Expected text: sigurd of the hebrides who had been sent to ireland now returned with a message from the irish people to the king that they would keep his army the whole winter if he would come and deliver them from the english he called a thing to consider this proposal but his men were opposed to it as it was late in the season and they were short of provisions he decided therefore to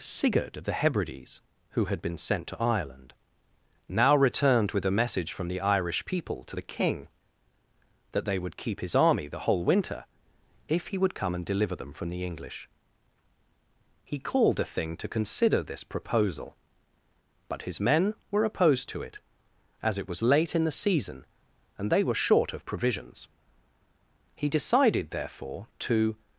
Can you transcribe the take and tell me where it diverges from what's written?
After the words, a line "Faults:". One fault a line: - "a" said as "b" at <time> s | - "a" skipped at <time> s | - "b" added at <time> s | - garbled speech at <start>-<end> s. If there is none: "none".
sigurd of the hebrides who had been sent to ireland now returned with a message from the irish people to the king that they would keep his army the whole winter if he would come and deliver them from the english he called a thing to consider this proposal but his men were opposed to it as it was late in the season and they were short of provisions he decided therefore to
Faults:
none